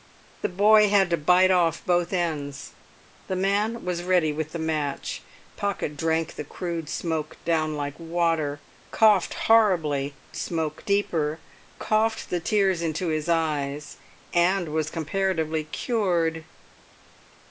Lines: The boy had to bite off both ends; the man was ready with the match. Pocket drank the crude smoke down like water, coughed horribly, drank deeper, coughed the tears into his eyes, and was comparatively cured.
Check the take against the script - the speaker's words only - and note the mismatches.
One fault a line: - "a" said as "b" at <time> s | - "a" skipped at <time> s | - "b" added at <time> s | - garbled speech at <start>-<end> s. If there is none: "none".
- "drank" said as "smoke" at 10.4 s